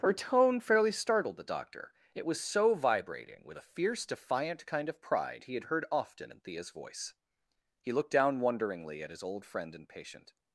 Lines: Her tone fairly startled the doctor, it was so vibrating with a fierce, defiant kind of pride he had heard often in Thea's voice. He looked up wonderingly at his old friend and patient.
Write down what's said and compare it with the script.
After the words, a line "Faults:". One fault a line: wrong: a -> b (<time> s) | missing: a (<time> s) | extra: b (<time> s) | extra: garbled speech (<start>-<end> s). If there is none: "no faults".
Her tone fairly startled the doctor, it was so vibrating with a fierce, defiant kind of pride he had heard often in Thea's voice. He looked down wonderingly at his old friend and patient.
Faults:
wrong: up -> down (8.1 s)